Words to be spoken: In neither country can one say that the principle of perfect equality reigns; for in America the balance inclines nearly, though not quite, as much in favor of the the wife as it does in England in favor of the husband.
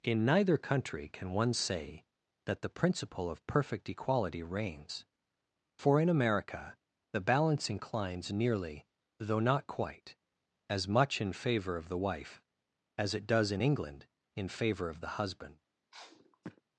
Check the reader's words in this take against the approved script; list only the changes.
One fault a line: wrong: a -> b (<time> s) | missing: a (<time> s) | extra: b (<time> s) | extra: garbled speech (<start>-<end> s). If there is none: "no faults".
missing: the (12.0 s)